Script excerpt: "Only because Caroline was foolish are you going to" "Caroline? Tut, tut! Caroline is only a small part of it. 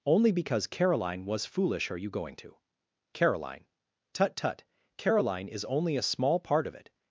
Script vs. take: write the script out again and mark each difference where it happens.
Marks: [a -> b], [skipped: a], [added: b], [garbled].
"Only because Caroline was foolish are you going to" "Caroline? Tut, tut! Caroline is only a small part of it.